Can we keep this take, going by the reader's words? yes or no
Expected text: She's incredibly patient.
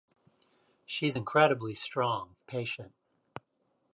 no